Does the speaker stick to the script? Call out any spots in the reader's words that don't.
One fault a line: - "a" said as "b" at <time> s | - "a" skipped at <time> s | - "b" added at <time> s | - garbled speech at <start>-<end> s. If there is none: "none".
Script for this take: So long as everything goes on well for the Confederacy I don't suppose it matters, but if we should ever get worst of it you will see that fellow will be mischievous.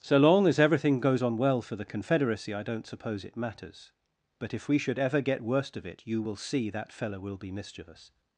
none